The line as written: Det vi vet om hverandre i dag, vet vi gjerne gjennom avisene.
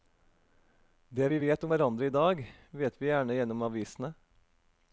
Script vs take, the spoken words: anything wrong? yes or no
no